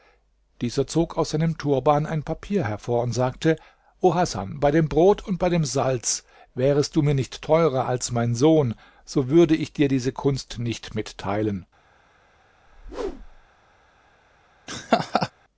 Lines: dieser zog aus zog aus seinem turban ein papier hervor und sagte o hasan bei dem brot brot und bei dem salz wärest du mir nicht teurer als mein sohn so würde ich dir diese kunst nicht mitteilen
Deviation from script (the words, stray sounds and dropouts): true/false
true